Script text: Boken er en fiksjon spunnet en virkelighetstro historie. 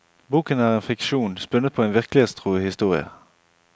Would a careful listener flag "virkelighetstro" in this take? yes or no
no